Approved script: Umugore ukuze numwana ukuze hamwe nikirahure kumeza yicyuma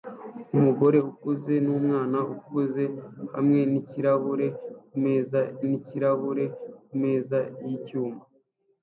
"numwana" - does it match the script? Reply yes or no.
yes